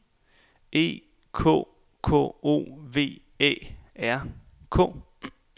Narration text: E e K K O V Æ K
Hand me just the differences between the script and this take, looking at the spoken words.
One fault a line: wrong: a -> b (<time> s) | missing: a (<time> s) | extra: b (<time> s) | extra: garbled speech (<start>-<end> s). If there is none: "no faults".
missing: e (1.0 s)
extra: R (4.0 s)